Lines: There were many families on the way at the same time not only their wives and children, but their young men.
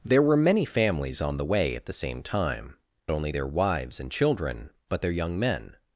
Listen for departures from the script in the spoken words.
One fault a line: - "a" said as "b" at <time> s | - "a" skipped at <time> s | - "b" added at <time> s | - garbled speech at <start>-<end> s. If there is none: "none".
- "not" skipped at 2.8 s